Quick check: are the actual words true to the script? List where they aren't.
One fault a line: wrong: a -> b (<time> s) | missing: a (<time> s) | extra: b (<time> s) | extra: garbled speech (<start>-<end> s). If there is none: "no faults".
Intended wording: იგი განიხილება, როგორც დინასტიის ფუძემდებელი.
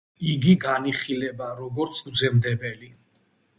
missing: დინასტიის (2.0 s)